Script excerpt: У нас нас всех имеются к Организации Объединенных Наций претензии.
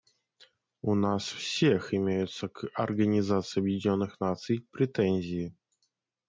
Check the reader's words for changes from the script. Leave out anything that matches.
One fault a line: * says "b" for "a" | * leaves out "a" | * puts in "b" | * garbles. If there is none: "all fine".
* leaves out "нас"